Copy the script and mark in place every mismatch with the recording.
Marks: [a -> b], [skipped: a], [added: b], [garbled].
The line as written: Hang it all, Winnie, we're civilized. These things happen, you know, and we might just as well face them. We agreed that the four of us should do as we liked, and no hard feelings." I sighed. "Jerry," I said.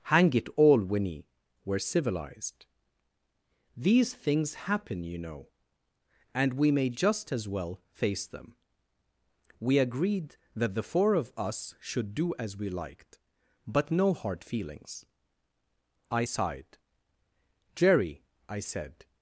Hang it all, Winnie, we're civilized. These things happen, you know, and we [might -> may] just as well face them. We agreed that the four of us should do as we liked, [and -> but] no hard feelings." I sighed. "Jerry," I said.